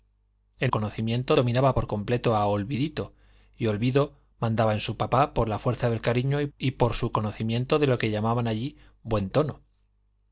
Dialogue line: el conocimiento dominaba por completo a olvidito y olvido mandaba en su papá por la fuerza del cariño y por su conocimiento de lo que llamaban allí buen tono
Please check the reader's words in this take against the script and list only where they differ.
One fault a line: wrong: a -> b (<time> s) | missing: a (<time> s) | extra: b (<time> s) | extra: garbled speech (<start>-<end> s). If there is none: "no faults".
no faults